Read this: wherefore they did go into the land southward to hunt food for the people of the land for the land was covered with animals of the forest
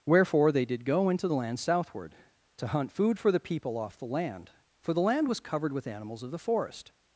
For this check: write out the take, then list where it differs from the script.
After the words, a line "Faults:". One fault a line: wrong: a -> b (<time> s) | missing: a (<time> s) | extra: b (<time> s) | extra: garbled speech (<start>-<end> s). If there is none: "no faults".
wherefore they did go into the land southward to hunt food for the people off the land for the land was covered with animals of the forest
Faults:
wrong: of -> off (3.8 s)